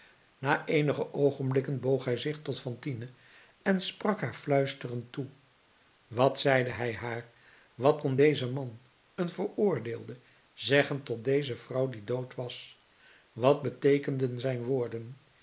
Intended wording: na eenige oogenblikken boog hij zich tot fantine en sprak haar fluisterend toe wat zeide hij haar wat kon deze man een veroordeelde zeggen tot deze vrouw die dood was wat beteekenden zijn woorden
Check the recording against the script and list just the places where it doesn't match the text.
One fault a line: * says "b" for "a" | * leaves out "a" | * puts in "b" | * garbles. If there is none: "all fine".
all fine